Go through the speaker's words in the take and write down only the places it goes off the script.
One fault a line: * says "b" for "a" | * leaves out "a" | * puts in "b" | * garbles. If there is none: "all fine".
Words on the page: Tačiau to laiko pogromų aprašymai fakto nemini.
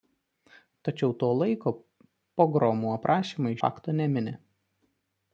all fine